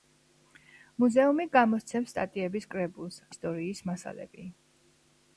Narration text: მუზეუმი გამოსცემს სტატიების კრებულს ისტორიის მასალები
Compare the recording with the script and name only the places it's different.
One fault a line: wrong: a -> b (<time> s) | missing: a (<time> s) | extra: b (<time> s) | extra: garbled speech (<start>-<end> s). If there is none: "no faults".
no faults